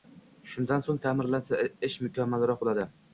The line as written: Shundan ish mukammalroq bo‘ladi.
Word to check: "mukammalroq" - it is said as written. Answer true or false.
true